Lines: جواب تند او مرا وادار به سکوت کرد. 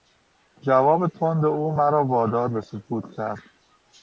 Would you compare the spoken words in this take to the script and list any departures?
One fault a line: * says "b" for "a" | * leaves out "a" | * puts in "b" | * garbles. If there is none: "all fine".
all fine